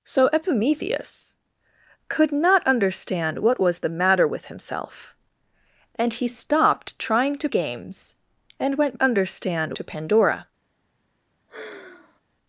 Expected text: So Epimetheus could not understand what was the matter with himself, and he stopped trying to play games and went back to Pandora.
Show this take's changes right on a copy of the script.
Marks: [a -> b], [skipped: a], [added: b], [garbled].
So Epimetheus could not understand what was the matter with himself, and he stopped trying to [skipped: play] games and went [back -> understand] to Pandora.